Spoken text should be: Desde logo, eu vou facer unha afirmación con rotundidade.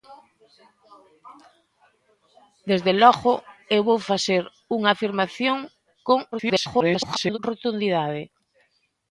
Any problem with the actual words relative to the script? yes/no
yes